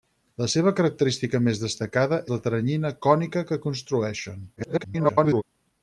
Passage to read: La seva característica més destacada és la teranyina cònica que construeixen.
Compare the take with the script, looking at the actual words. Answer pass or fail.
fail